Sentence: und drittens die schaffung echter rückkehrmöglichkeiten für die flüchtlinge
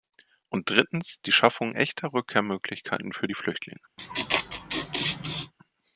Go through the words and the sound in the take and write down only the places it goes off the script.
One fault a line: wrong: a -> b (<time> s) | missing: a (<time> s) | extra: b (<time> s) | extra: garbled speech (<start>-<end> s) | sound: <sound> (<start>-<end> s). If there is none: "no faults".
sound: laugh (4.0-5.5 s)